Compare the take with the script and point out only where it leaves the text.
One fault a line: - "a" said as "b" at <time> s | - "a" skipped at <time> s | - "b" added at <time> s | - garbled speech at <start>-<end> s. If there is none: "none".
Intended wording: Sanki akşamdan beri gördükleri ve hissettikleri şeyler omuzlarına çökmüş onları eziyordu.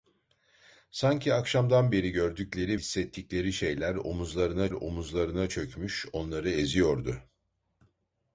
- "ve" skipped at 2.8 s
- "omuzlarına" added at 4.7 s